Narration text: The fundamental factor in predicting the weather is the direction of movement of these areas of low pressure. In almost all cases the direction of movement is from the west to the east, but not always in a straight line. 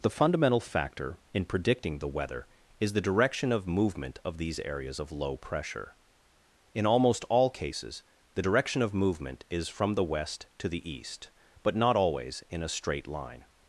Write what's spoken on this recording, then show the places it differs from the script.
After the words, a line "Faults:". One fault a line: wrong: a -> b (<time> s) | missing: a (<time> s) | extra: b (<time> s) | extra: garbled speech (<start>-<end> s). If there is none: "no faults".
The fundamental factor in predicting the weather is the direction of movement of these areas of low pressure. In almost all cases the direction of movement is from the west to the east, but not always in a straight line.
Faults:
no faults